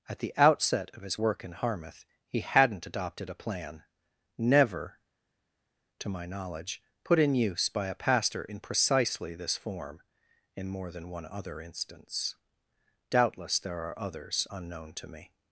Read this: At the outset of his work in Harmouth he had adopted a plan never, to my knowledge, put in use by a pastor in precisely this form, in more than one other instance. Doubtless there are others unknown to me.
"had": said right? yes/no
no